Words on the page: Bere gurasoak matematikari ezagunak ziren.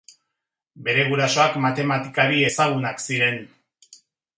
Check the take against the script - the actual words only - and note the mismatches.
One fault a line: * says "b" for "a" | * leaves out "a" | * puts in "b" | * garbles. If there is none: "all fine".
all fine